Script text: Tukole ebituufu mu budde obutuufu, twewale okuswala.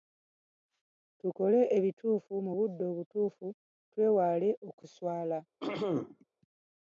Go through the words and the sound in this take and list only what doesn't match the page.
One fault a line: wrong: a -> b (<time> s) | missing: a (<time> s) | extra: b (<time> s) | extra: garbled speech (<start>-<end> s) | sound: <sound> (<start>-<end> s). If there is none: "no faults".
sound: throat clearing (5.6-6.2 s)